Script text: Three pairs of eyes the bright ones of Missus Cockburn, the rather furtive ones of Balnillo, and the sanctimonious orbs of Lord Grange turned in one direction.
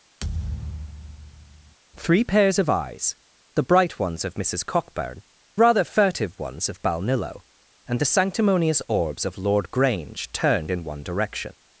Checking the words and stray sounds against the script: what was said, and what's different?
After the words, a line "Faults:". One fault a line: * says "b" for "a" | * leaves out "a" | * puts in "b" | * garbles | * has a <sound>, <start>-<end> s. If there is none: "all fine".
Three pairs of eyes the bright ones of Missus Cockburn, rather furtive ones of Balnillo, and the sanctimonious orbs of Lord Grange turned in one direction.
Faults:
* has a thud, 0.2-1.8 s
* leaves out "the"